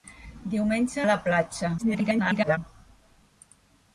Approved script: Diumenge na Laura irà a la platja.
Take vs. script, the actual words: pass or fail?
fail